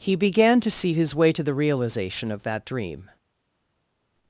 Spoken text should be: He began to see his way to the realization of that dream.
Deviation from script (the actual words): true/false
false